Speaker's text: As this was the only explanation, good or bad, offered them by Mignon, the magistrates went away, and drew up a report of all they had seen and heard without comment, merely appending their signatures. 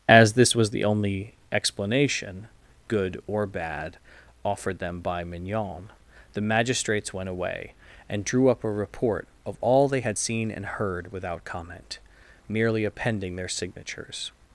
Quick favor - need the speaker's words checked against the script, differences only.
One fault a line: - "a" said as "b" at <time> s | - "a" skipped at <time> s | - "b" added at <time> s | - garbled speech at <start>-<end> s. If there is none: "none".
none